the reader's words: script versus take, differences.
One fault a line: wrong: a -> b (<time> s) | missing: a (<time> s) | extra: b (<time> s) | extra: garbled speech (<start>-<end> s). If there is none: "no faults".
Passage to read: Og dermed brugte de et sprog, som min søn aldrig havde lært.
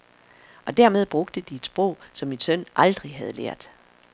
no faults